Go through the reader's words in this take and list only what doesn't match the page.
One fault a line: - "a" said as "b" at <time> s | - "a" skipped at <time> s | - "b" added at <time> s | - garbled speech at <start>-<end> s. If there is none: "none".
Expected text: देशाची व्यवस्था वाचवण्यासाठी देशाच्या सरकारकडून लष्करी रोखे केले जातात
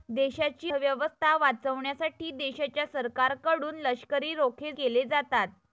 none